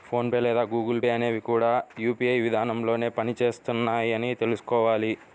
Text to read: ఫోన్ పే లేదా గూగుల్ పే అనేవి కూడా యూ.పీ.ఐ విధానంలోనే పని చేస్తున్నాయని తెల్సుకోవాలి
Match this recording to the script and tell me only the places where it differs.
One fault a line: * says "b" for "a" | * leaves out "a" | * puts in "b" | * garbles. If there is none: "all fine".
all fine